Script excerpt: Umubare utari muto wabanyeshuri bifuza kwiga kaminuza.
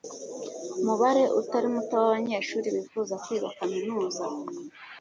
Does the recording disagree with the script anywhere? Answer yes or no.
no